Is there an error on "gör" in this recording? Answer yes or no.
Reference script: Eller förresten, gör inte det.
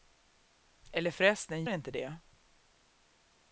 yes